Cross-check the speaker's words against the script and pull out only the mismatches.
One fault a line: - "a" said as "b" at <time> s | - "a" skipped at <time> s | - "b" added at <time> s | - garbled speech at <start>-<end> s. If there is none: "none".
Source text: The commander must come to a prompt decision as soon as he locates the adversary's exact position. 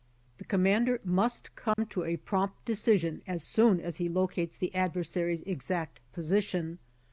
none